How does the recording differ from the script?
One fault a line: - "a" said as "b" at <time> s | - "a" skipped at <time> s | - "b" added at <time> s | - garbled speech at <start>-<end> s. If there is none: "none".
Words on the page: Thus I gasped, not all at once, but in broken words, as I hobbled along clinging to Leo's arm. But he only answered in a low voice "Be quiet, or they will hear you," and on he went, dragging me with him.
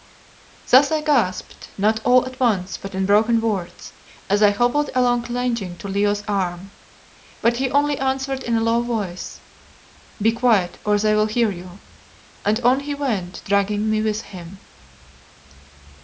none